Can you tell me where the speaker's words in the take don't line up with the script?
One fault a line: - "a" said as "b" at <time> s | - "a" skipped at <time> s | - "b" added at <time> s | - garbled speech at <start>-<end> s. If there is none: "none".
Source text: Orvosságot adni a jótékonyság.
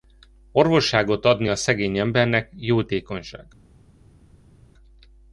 - "szegény embernek" added at 1.6 s